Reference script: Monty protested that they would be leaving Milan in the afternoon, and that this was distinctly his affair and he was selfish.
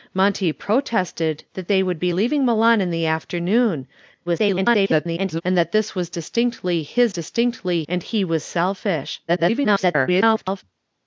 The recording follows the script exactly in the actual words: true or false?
false